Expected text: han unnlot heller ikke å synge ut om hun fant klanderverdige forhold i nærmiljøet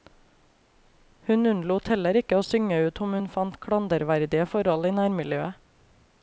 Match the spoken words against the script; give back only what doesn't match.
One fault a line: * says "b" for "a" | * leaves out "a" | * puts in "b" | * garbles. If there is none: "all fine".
* says "hun" for "han"